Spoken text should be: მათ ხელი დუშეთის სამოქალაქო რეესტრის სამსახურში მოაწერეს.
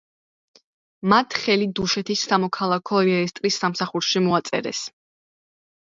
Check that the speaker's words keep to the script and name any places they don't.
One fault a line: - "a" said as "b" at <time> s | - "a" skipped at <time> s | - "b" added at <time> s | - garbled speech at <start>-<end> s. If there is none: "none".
none